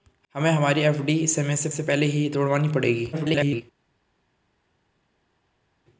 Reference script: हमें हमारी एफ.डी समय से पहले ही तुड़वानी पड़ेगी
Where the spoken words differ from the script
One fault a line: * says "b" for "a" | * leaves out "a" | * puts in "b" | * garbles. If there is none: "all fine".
* puts in "से"
* garbles